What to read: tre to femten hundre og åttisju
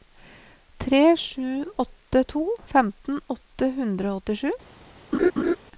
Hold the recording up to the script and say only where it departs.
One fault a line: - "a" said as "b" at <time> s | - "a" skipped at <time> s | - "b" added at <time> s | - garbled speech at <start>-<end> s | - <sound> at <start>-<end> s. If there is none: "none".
- "sju åtte" added at 1.2 s
- "åtte" added at 3.4 s
- laugh at 5.1-5.6 s